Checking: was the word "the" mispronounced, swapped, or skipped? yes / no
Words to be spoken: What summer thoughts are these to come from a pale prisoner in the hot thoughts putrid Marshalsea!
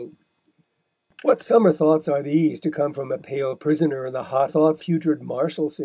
no